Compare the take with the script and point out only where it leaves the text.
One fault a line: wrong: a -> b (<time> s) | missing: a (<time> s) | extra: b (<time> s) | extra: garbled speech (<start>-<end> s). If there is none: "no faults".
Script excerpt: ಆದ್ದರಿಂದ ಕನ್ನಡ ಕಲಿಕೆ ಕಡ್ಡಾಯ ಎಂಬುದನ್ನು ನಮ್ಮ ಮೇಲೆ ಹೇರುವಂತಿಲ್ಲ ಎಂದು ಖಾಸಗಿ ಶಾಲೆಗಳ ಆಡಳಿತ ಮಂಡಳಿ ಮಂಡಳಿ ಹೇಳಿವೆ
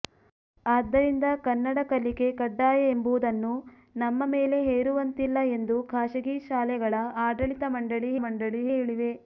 no faults